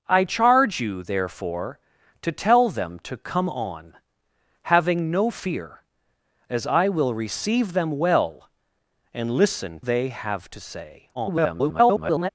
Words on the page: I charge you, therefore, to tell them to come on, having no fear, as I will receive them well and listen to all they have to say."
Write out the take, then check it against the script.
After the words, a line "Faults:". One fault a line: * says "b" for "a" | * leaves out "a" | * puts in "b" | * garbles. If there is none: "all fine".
I charge you, therefore, to tell them to come on, having no fear, as I will receive them well and listen they have to say." [garbled]
Faults:
* leaves out "to all"
* garbles